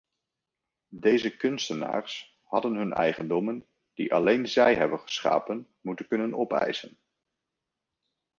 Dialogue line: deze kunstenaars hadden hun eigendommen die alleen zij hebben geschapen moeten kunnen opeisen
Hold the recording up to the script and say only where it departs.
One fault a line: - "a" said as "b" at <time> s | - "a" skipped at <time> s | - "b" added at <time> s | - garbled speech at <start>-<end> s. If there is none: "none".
none